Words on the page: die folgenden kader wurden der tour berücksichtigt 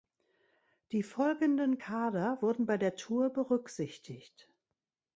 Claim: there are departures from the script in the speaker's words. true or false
true